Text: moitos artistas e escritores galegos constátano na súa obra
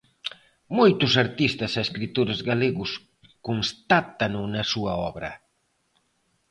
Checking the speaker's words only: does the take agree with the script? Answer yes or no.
yes